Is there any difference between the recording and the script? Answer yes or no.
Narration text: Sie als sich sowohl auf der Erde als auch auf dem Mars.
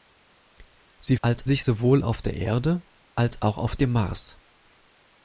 no